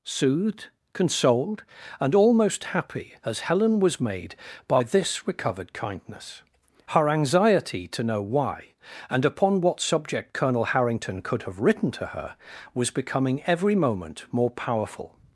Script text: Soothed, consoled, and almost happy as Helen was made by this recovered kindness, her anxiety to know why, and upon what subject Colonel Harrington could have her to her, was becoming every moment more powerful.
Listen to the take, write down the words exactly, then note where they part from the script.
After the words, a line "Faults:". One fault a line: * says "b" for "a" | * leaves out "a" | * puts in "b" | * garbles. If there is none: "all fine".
Soothed, consoled, and almost happy as Helen was made by this recovered kindness, her anxiety to know why, and upon what subject Colonel Harrington could have written to her, was becoming every moment more powerful.
Faults:
* says "written" for "her"